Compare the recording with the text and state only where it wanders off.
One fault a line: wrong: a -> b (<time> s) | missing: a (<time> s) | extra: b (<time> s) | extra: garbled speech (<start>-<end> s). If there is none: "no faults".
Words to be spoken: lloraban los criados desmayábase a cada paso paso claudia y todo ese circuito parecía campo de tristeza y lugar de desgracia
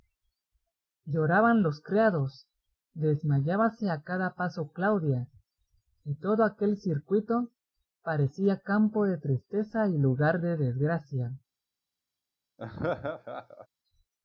missing: paso (4.7 s)
wrong: ese -> aquel (6.4 s)